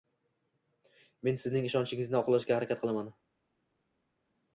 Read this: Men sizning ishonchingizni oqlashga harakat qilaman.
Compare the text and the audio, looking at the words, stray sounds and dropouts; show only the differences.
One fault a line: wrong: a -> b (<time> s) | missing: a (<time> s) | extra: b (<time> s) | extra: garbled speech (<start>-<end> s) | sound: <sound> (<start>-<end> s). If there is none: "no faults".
no faults